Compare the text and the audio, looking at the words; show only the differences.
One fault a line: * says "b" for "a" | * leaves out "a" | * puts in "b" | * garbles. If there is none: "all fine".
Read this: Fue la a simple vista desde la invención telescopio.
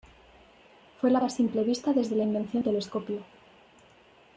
all fine